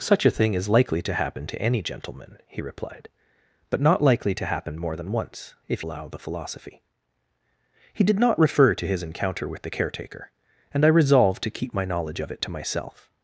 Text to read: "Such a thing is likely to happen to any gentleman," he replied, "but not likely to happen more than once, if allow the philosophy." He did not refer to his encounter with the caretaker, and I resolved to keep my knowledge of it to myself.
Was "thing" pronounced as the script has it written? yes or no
yes